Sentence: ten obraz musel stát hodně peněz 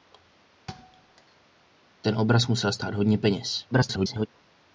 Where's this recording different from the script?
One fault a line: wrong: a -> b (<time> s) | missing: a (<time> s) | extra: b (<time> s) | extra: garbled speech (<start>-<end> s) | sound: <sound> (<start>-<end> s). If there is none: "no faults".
sound: thud (0.7-1.4 s)
extra: garbled speech (3.7-4.3 s)